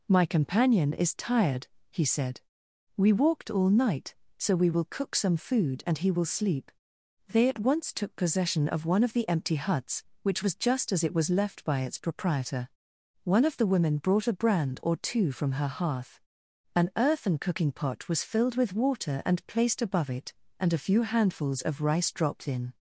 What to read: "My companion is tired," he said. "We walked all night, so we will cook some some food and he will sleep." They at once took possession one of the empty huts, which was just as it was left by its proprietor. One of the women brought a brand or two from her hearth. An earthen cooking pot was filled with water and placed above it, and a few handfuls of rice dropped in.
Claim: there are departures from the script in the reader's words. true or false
true